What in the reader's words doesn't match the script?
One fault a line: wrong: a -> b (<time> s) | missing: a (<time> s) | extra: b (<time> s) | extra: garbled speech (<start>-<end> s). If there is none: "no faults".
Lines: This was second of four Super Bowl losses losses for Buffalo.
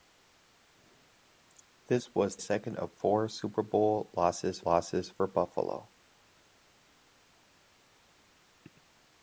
no faults